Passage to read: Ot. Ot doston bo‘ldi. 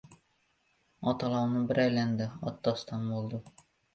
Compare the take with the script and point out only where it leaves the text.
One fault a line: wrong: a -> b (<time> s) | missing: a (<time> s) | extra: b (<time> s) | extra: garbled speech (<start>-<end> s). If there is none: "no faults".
extra: olovni bir aylandi (1.3 s)